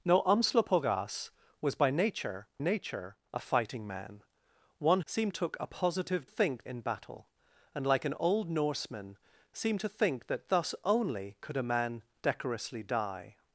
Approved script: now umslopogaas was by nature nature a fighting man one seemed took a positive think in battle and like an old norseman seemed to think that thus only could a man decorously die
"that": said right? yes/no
yes